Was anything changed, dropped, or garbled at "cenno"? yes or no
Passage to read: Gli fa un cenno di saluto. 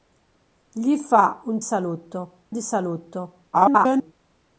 yes